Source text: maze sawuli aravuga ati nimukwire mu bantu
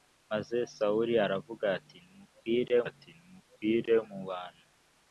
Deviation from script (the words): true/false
true